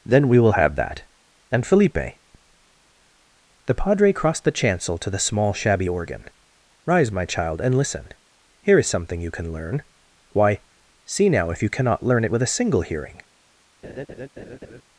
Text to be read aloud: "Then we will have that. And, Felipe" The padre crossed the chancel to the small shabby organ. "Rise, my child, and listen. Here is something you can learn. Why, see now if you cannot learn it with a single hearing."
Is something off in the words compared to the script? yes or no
no